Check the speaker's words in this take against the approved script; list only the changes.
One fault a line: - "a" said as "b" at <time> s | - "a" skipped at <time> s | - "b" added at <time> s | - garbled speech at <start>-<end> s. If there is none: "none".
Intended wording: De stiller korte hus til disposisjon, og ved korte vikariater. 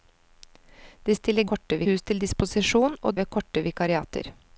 none